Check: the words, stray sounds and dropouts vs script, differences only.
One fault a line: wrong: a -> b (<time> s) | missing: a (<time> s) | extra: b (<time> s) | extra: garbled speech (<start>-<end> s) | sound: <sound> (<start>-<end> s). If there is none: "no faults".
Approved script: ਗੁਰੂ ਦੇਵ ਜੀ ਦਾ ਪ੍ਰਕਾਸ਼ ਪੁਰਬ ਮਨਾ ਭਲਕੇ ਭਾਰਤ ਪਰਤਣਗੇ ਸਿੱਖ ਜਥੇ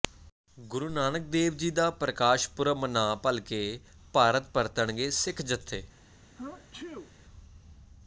extra: ਨਾਨਕ (0.9 s)
sound: sneeze (6.4-7.1 s)